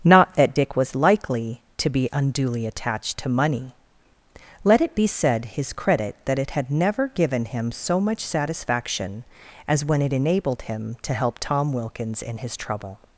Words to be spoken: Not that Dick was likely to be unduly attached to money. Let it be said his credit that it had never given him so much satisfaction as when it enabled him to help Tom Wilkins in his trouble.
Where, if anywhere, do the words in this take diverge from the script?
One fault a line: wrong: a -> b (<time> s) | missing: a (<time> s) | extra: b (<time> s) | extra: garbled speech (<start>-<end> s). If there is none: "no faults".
no faults